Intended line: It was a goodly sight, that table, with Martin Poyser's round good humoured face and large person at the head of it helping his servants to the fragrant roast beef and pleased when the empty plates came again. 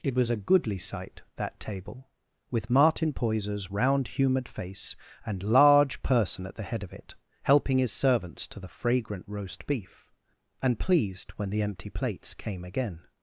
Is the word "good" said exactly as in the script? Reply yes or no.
no